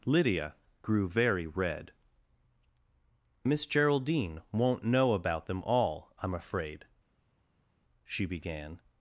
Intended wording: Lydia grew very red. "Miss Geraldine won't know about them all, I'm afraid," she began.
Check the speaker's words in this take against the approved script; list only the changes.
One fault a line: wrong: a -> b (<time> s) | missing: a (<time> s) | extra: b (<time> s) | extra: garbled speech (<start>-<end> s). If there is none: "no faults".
no faults